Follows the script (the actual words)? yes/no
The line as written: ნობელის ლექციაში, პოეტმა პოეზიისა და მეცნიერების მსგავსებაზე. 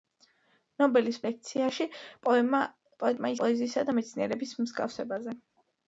yes